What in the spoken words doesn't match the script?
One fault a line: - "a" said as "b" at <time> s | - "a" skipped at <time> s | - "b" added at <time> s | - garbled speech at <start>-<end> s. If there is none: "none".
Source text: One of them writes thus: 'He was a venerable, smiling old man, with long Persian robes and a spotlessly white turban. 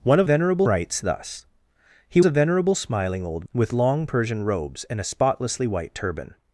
- "them" said as "venerable" at 0.2 s
- "was" skipped at 2.2 s
- "man" skipped at 3.5 s